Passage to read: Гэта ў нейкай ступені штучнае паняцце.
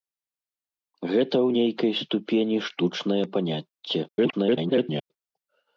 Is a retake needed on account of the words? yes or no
yes